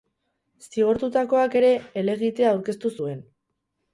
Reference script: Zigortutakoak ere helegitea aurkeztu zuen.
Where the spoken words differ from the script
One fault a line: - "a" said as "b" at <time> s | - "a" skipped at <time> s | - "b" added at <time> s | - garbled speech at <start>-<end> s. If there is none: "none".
none